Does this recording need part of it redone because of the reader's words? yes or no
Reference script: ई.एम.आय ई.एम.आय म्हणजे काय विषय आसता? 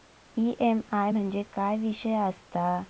yes